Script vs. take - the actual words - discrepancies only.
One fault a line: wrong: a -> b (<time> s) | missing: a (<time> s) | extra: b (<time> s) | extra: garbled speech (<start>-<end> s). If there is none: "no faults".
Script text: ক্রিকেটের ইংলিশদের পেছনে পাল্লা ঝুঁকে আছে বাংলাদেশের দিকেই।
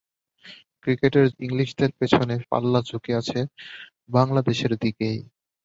no faults